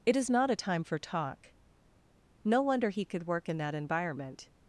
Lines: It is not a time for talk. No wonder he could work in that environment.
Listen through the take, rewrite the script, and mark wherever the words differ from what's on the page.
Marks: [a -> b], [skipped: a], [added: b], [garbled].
It is not a time for talk. No wonder he could work in that environment.